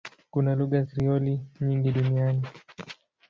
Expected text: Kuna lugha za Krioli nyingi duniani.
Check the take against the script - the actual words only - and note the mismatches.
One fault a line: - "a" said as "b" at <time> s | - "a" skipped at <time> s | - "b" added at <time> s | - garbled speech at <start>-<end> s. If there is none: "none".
- "za" skipped at 0.8 s